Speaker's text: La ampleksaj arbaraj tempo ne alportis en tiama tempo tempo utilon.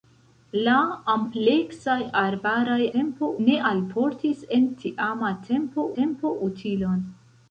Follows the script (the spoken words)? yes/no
yes